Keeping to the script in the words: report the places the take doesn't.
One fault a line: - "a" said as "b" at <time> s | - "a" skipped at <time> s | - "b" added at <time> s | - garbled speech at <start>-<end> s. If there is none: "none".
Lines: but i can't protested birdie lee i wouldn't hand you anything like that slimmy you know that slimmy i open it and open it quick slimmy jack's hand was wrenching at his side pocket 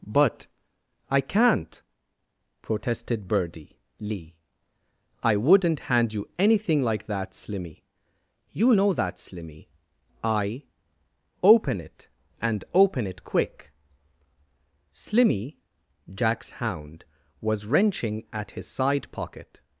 - "hand" said as "hound" at 16.5 s